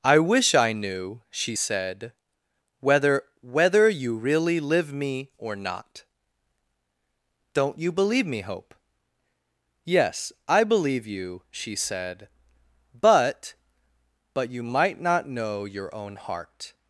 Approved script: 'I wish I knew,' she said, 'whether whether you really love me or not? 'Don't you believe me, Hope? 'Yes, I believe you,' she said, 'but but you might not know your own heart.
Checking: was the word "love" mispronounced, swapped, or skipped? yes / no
yes